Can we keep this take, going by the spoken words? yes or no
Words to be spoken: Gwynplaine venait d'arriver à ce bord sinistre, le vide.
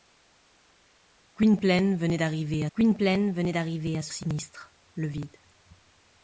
no